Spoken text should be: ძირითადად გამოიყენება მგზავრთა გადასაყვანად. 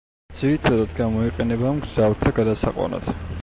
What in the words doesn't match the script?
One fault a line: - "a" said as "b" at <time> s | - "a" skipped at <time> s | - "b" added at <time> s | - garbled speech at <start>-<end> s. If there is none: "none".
none